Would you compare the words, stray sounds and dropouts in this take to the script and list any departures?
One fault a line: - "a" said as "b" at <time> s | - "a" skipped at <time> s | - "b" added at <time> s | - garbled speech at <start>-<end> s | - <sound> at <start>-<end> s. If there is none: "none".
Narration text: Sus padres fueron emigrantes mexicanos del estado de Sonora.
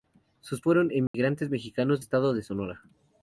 - "padres" skipped at 0.6 s
- dropout at 1.1-1.1 s
- "del" skipped at 2.0 s